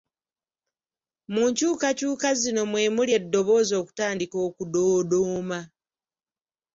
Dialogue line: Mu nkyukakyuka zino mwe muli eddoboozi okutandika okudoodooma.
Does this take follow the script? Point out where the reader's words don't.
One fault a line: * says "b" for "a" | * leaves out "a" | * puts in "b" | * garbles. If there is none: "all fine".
all fine